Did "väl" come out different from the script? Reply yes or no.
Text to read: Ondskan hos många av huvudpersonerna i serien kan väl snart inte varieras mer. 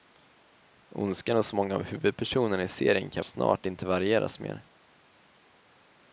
yes